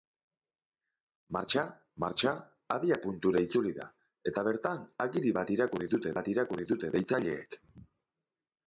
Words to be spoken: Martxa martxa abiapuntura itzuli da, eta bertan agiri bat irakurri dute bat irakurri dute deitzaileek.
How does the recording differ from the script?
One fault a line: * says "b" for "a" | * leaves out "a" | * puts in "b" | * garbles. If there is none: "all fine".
all fine